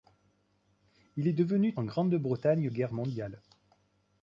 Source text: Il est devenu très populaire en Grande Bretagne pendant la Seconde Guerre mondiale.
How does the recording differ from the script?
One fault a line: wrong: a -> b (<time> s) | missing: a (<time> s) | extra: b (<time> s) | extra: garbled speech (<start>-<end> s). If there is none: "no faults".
missing: très populaire (1.8 s)
missing: pendant la Seconde (2.7 s)